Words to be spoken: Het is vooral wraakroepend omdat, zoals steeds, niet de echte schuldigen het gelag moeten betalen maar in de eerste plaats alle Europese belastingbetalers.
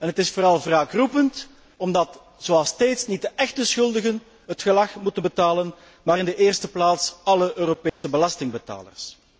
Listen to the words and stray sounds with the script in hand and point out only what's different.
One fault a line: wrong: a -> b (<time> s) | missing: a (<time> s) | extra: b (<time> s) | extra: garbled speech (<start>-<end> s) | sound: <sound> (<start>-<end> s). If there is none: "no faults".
sound: dropout (7.9-8.0 s)